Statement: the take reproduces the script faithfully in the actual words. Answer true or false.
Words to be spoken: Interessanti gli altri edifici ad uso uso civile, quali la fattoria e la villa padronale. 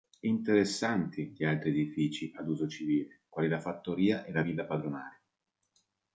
false